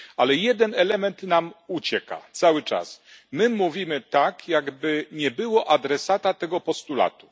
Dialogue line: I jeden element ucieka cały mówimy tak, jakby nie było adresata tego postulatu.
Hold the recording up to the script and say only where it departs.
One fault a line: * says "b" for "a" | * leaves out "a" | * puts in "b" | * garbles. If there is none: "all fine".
* says "Ale" for "I"
* puts in "nam"
* puts in "czas my"